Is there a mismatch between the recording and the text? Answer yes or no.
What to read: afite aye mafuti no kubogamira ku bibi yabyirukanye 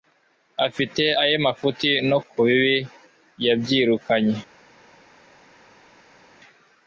yes